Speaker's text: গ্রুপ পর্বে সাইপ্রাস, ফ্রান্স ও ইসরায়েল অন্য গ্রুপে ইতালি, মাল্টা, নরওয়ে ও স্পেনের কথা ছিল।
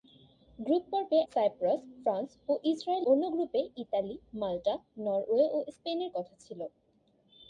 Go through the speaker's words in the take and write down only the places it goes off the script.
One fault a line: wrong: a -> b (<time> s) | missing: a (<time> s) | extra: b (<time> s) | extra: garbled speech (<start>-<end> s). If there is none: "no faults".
no faults